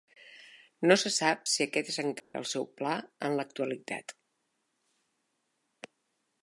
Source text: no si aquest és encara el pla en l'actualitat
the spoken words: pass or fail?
fail